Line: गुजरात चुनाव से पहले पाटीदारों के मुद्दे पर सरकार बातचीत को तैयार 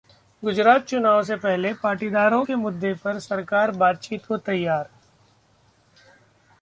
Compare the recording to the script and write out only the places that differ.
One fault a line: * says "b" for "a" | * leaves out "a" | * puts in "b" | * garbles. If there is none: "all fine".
all fine